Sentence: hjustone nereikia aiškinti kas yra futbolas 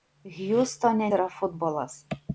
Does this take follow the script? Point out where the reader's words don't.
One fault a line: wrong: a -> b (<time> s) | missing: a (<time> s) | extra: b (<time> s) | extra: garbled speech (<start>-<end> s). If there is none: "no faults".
missing: nereikia aiškinti kas (1.1 s)